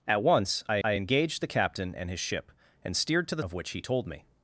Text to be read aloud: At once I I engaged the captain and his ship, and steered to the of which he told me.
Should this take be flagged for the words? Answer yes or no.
no